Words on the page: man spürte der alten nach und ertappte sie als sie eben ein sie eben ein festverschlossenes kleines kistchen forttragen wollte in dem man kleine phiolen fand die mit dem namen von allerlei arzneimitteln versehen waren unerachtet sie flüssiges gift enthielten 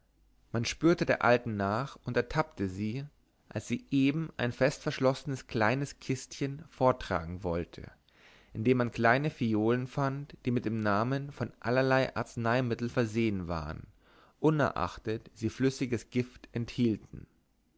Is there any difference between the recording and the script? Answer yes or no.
yes